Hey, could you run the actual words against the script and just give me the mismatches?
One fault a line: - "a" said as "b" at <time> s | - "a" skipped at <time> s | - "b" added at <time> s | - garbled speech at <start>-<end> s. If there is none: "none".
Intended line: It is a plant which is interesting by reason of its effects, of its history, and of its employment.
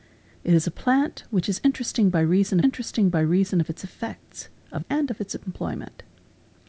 - "interesting by reason" added at 2.6 s
- "its history" skipped at 4.8 s